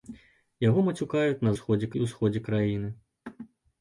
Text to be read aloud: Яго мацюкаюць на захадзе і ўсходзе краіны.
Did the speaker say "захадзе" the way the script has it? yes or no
no